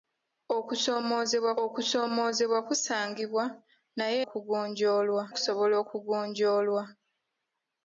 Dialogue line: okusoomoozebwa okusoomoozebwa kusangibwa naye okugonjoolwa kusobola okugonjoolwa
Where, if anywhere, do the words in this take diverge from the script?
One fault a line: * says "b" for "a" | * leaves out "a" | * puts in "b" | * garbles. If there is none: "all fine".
all fine